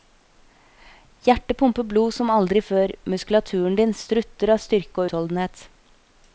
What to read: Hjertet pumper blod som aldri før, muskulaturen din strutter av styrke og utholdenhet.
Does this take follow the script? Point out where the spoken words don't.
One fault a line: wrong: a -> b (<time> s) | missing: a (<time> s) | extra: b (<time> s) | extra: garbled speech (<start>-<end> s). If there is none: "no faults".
missing: og (5.0 s)